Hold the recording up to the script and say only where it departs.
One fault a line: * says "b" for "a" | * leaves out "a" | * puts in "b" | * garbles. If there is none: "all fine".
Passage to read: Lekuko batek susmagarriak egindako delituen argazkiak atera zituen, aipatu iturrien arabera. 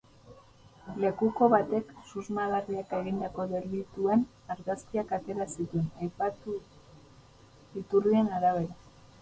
all fine